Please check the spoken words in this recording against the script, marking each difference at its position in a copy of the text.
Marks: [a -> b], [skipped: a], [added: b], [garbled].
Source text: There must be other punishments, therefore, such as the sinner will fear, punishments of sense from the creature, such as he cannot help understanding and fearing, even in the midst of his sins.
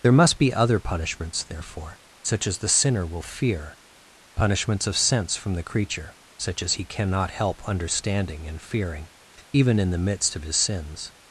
There must be other punishments, therefore, such as the sinner will fear, punishments of sense from the creature, such as he cannot help understanding and fearing, even in the midst of his sins.